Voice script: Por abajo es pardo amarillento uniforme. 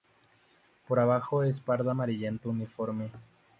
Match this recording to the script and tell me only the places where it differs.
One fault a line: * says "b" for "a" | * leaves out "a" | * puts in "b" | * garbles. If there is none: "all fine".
all fine